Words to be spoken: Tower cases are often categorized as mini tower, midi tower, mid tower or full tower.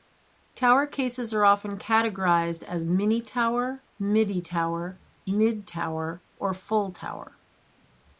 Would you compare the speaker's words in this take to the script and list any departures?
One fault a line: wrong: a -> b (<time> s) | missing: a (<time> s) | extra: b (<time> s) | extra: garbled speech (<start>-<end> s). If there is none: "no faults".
no faults